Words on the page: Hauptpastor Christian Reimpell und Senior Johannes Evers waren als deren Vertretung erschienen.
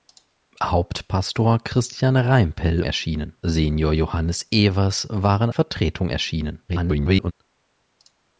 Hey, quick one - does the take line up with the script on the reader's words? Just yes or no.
no